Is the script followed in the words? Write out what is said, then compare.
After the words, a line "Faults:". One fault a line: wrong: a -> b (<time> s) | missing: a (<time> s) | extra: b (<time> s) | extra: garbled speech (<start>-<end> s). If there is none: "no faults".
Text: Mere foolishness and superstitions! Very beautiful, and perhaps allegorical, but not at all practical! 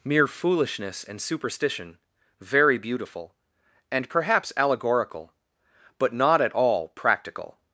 Mere foolishness and superstition! Very beautiful, and perhaps allegorical, but not at all practical!
Faults:
wrong: superstitions -> superstition (1.2 s)